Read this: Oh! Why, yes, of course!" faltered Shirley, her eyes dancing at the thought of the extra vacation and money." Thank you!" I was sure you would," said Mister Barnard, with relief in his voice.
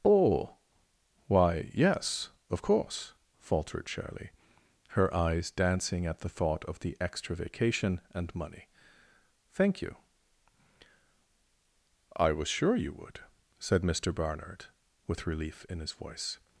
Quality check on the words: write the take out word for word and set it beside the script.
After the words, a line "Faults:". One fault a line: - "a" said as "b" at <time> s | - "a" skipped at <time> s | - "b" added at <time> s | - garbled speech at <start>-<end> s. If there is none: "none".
Oh! Why, yes, of course!" faltered Shirley, her eyes dancing at the thought of the extra vacation and money." Thank you!" I was sure you would," said Mister Barnard, with relief in his voice.
Faults:
none